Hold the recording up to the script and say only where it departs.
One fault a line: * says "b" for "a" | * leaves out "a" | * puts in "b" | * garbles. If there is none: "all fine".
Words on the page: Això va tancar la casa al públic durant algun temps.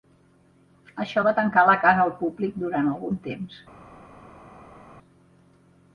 all fine